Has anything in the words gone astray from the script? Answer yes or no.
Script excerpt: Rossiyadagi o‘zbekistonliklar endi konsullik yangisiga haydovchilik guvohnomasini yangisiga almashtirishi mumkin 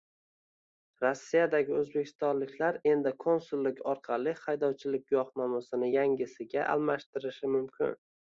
yes